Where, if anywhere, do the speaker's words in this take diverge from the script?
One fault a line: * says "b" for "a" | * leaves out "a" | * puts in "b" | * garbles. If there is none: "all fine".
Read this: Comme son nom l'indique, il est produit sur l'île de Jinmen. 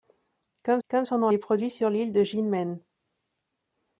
* puts in "comme"
* leaves out "l'indique il"